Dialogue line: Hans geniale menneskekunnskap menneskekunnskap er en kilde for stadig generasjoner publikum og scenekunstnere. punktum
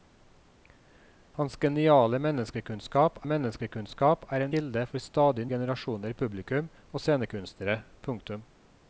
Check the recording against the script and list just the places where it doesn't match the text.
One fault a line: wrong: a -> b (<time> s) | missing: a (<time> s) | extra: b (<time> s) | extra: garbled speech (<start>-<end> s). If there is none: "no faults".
no faults